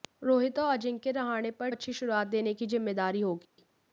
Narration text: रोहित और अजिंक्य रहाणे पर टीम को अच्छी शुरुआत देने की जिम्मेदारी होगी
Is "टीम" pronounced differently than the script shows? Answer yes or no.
yes